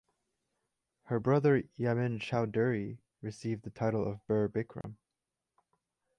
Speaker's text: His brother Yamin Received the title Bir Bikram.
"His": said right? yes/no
no